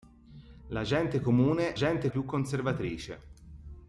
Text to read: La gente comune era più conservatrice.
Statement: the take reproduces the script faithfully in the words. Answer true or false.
false